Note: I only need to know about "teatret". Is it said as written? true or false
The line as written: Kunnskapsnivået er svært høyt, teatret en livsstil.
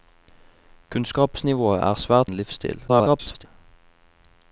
false